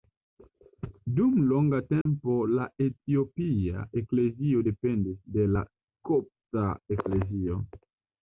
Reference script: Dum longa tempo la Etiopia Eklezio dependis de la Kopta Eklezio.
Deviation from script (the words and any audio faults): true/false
true